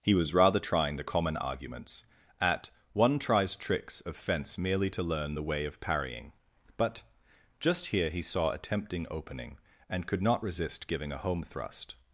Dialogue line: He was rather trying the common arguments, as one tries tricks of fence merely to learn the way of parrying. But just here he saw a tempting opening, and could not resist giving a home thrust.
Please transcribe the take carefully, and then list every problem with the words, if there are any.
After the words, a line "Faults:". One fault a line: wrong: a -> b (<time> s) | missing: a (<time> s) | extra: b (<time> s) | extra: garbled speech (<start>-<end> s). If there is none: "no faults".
He was rather trying the common arguments, at one tries tricks of fence merely to learn the way of parrying. But just here he saw a tempting opening, and could not resist giving a home thrust.
Faults:
wrong: as -> at (2.4 s)